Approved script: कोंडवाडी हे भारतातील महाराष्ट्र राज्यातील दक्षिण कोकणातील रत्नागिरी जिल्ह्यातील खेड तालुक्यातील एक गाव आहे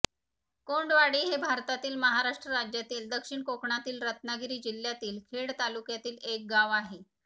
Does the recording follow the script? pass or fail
pass